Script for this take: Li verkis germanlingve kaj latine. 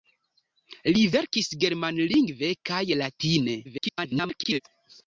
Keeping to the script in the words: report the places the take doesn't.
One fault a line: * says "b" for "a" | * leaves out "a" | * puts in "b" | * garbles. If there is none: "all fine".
* garbles